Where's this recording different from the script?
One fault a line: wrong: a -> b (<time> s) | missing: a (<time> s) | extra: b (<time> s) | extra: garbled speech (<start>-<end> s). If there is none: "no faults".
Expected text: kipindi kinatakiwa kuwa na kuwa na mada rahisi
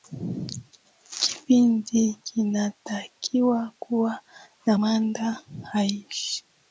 missing: kuwa na (4.8 s)